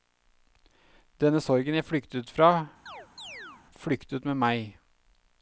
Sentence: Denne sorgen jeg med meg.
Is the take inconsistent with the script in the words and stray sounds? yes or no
yes